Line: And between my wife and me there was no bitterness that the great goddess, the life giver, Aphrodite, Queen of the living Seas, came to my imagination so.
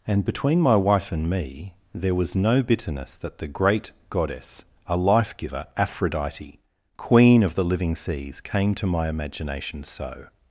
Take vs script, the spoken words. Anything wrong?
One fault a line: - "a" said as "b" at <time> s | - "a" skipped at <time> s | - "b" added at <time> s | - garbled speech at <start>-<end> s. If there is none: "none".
- "the" said as "a" at 4.9 s